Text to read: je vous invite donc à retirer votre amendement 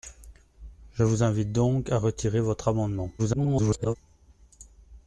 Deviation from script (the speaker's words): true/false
true